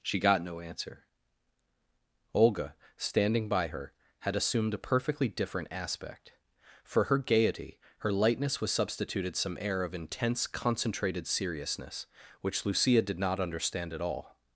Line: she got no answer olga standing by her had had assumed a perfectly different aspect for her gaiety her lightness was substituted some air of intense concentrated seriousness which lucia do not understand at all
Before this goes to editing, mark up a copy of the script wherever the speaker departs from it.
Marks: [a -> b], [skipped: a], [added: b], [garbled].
she got no answer olga standing by her had [skipped: had] assumed a perfectly different aspect for her gaiety her lightness was substituted some air of intense concentrated seriousness which lucia [do -> did] not understand at all